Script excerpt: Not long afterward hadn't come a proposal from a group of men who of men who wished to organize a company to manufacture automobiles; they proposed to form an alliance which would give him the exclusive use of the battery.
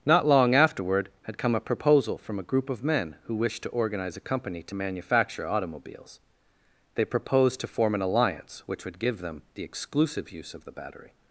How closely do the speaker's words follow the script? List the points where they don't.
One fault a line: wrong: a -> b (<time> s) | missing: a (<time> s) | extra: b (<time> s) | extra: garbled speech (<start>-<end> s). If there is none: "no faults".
wrong: hadn't -> had (1.2 s)
missing: of men who (3.4 s)
wrong: him -> them (9.2 s)